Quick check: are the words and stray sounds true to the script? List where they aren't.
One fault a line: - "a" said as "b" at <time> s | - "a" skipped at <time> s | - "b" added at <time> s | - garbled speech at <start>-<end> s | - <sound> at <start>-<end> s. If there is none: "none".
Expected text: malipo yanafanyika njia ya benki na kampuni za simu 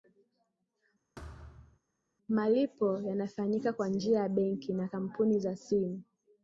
- thud at 1.2-1.8 s
- "kwa" added at 3.7 s